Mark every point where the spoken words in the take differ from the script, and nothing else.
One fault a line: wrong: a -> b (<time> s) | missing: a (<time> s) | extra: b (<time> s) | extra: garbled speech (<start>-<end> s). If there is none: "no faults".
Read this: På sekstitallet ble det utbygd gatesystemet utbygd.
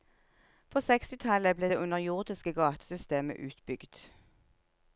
wrong: utbygd -> underjordiske (1.8 s)